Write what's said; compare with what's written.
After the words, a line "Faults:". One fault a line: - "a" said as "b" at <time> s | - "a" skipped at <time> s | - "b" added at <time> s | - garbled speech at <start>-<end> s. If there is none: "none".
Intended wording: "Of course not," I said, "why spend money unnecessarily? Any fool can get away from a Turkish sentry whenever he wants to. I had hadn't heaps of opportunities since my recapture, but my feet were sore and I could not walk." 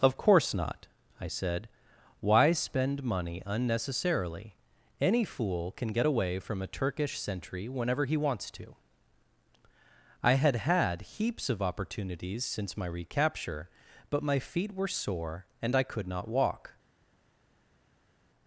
"Of course not," I said, "why spend money unnecessarily? Any fool can get away from a Turkish sentry whenever he wants to. I had had heaps of opportunities since my recapture, but my feet were sore and I could not walk."
Faults:
- "hadn't" said as "had" at 10.6 s